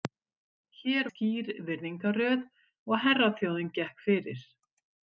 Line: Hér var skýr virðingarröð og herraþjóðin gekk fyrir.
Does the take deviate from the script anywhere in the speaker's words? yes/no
yes